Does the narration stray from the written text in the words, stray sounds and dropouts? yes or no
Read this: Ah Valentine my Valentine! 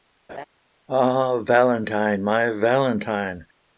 yes